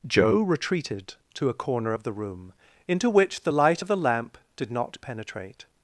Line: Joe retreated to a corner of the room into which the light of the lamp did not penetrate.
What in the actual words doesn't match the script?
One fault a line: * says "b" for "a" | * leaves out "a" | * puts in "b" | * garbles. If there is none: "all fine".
all fine